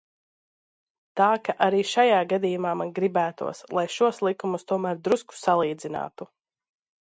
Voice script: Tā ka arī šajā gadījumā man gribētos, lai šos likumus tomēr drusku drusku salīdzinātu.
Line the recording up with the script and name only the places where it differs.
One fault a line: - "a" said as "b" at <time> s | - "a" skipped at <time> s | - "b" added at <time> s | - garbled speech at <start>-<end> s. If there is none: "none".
- "drusku" skipped at 5.4 s